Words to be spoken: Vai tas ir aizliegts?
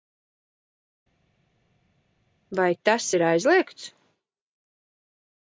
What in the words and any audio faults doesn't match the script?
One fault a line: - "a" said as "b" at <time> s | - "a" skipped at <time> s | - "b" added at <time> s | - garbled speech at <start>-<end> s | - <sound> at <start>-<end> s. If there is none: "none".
none